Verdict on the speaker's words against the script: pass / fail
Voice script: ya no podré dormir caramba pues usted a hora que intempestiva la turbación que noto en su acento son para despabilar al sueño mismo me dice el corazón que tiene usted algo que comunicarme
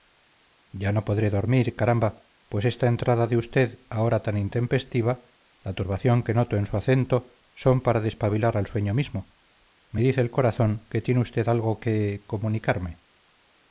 fail